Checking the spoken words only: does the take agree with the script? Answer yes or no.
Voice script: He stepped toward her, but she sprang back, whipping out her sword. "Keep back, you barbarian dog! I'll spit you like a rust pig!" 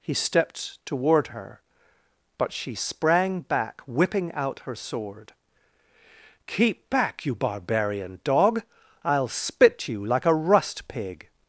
yes